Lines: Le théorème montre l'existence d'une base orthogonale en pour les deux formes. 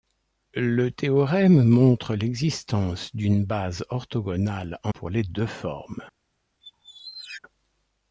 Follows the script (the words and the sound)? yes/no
no